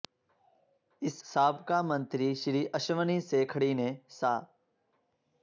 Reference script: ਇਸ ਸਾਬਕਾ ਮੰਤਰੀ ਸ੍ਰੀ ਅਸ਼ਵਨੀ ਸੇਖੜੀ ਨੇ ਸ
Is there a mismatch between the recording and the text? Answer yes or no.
no